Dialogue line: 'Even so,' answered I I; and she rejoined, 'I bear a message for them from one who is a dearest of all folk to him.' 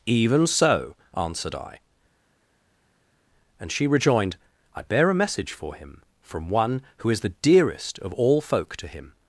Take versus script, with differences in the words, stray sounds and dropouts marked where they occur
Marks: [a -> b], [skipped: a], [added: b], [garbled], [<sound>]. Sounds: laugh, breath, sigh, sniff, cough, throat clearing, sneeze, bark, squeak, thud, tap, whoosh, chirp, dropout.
'Even so,' answered I [skipped: I;] and she rejoined, 'I bear a message for [them -> him] from one who is [a -> the] dearest of all folk to him.'